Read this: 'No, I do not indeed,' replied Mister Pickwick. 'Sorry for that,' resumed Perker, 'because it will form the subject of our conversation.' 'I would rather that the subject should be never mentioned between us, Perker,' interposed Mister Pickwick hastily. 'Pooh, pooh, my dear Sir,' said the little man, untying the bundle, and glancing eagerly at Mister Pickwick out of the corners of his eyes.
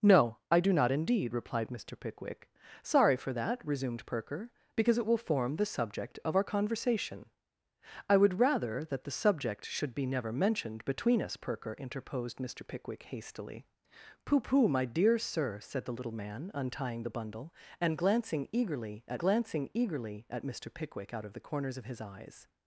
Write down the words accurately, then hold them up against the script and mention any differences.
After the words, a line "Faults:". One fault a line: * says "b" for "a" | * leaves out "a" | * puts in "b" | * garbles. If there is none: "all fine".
'No, I do not indeed,' replied Mister Pickwick. 'Sorry for that,' resumed Perker, 'because it will form the subject of our conversation.' 'I would rather that the subject should be never mentioned between us, Perker,' interposed Mister Pickwick hastily. 'Pooh, pooh, my dear Sir,' said the little man, untying the bundle, and glancing eagerly at glancing eagerly at Mister Pickwick out of the corners of his eyes.
Faults:
* puts in "glancing eagerly at"